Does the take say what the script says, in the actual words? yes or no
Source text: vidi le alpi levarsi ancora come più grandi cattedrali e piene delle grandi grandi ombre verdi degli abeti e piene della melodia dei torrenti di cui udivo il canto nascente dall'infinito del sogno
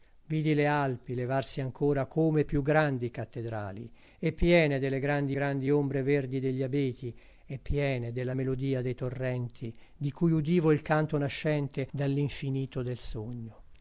yes